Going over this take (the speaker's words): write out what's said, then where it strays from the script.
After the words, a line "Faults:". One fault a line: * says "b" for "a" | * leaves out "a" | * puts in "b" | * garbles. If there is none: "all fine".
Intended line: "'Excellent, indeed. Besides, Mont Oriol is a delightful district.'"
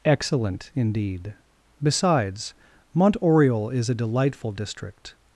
"'Excellent, indeed. Besides, Mont Oriol is a delightful district.'"
Faults:
all fine